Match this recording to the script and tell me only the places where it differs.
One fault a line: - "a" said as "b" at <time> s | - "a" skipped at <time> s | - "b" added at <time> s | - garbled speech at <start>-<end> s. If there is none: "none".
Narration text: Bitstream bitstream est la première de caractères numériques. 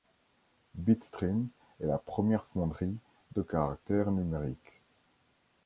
- "bitstream" skipped at 1.5 s
- "fonderie" added at 2.5 s